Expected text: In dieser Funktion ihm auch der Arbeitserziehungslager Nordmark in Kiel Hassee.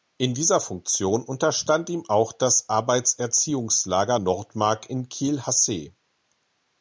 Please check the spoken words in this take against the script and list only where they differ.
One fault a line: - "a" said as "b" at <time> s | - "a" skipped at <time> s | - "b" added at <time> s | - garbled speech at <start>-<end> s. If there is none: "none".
- "unterstand" added at 1.2 s
- "der" said as "das" at 2.3 s